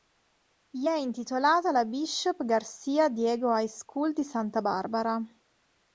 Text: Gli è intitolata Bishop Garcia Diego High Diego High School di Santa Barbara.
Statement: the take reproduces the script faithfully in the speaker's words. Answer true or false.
false